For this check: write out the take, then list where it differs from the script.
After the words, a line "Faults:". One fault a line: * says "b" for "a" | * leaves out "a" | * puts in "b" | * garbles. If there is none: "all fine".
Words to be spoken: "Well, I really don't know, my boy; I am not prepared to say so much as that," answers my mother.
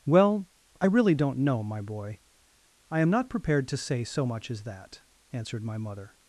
"Well, I really don't know, my boy; I am not prepared to say so much as that," answered my mother.
Faults:
* says "answered" for "answers"